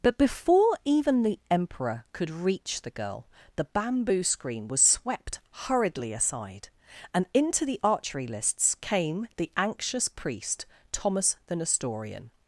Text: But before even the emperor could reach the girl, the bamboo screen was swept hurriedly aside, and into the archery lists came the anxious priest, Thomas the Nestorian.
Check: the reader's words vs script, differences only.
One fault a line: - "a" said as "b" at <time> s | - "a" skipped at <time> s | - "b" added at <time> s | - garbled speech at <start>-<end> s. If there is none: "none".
none